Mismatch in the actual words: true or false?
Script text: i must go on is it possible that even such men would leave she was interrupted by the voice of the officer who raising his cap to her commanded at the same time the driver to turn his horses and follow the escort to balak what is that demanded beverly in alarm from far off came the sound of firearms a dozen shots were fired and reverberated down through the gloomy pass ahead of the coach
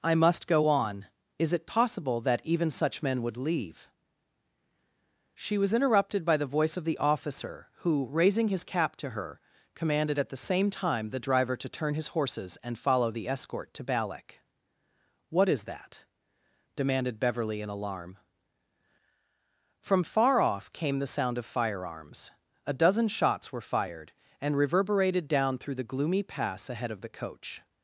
false